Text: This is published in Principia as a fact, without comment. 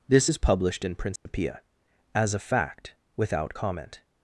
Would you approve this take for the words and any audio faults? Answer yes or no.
no